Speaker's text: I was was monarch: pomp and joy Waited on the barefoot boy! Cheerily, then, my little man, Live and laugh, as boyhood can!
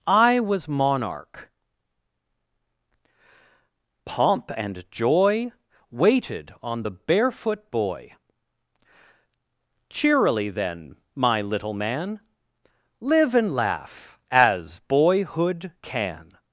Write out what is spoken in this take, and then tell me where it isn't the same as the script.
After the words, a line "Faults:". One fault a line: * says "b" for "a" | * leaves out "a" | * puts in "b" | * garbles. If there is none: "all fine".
I was monarch: pomp and joy Waited on the barefoot boy! Cheerily, then, my little man, Live and laugh, as boyhood can!
Faults:
* leaves out "was"